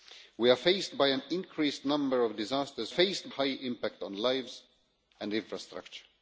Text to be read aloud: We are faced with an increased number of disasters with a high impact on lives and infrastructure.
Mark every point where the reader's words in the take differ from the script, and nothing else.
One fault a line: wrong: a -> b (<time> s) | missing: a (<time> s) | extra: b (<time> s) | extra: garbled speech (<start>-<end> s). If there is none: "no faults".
wrong: with -> faced (2.9 s)